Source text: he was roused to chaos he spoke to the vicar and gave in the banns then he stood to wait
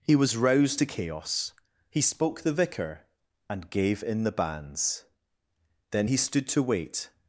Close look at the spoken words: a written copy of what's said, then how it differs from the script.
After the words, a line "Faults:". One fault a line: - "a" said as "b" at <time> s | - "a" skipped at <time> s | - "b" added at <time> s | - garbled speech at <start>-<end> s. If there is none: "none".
he was roused to chaos he spoke the vicar and gave in the banns then he stood to wait
Faults:
- "to" skipped at 2.4 s